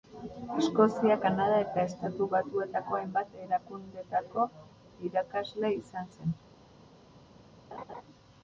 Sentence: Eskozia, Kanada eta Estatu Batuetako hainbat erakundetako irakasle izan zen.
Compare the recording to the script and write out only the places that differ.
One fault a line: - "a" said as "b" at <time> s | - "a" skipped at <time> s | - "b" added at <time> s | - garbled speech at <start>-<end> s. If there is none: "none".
none